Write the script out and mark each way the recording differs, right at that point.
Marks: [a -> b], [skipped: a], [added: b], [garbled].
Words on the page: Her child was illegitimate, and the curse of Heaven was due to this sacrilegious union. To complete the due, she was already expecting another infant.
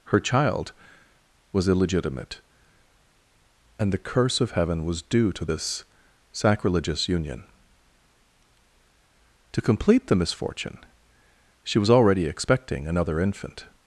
Her child was illegitimate, and the curse of Heaven was due to this sacrilegious union. To complete the [due, -> misfortune] she was already expecting another infant.